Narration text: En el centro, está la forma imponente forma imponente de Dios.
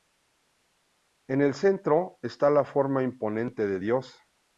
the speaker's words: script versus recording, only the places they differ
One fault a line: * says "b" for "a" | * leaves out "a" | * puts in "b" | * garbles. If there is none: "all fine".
* leaves out "forma imponente"